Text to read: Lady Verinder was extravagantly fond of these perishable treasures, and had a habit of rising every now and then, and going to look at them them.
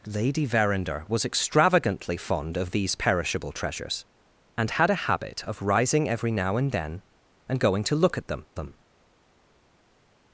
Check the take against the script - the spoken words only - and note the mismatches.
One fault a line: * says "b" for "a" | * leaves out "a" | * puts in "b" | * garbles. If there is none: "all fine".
all fine